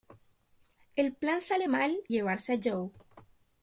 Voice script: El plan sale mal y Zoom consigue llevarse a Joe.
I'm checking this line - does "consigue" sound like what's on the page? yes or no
no